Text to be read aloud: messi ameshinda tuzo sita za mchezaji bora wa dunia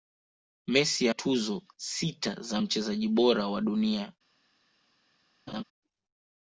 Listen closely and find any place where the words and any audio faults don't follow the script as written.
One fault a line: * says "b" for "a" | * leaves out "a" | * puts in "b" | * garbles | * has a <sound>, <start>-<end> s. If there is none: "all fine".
* leaves out "ameshinda"
* has a laugh, 5.5-5.6 s